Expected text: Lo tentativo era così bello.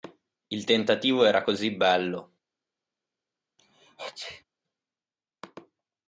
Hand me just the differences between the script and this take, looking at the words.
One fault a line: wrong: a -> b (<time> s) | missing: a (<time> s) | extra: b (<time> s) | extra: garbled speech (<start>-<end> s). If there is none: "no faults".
wrong: Lo -> Il (0.5 s)